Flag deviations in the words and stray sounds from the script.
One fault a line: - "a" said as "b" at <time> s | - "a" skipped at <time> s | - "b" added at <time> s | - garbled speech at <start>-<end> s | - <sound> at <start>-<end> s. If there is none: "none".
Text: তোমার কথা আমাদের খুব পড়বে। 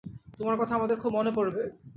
- "মনে" added at 1.1 s